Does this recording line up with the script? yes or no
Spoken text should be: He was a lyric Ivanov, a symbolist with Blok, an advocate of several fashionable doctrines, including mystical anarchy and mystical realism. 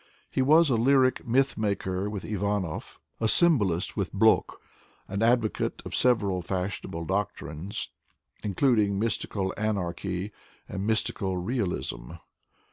no